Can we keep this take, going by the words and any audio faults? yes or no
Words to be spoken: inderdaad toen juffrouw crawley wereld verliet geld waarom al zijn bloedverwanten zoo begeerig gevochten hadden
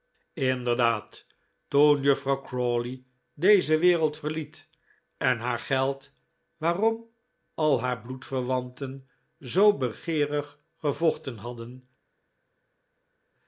no